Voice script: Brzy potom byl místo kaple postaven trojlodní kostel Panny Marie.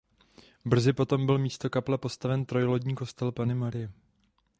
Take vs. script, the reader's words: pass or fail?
pass